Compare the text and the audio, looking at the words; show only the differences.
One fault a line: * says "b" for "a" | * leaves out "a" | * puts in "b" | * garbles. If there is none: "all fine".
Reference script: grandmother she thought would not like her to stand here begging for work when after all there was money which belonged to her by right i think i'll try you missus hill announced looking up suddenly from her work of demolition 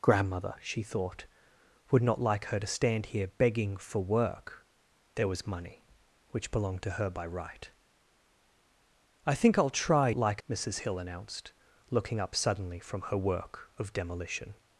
* leaves out "when after all"
* says "like" for "you"